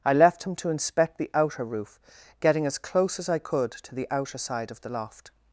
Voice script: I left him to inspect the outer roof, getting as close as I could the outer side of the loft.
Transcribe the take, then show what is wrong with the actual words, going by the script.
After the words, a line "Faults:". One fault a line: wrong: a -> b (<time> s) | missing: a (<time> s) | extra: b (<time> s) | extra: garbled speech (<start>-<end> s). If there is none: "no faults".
I left him to inspect the outer roof, getting as close as I could to the outer side of the loft.
Faults:
extra: to (3.7 s)